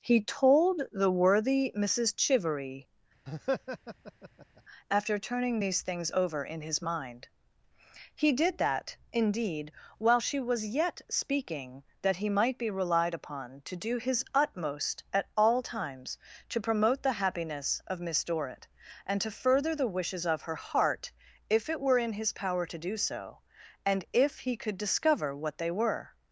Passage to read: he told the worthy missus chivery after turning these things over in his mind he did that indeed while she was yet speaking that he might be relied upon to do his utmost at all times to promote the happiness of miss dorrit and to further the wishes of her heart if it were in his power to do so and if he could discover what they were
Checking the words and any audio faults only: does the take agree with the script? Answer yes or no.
no